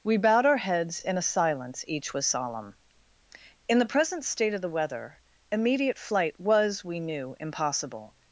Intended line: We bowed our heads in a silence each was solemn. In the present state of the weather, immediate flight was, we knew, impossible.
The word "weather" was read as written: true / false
true